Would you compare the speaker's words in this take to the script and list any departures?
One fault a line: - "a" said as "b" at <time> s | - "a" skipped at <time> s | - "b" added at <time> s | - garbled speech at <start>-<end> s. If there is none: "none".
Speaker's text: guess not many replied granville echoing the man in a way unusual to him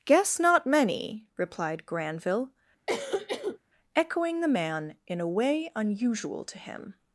none